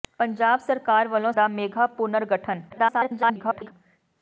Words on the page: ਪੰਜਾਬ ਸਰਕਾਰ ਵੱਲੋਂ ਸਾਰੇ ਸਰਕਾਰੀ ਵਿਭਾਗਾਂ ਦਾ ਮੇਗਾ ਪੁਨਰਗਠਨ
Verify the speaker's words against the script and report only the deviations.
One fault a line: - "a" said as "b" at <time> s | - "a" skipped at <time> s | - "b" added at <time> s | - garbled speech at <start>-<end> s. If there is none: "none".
- "ਸਾਰੇ ਸਰਕਾਰੀ ਵਿਭਾਗਾਂ" skipped at 1.3 s
- garbled speech at 2.7-3.7 s